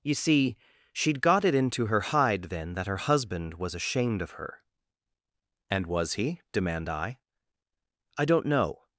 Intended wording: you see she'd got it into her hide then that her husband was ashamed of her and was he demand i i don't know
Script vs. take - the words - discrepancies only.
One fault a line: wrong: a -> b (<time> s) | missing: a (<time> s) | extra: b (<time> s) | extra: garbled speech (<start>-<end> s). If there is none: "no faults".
no faults